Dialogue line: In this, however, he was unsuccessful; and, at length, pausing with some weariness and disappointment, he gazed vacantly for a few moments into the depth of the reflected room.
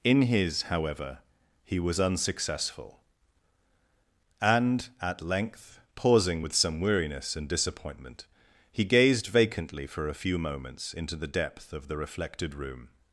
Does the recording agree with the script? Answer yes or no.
no